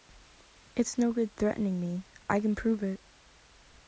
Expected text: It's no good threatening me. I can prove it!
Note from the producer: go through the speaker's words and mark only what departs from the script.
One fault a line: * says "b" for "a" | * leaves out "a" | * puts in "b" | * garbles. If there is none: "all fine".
all fine